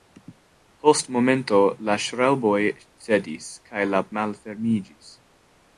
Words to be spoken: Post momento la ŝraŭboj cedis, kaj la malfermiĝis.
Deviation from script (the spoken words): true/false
false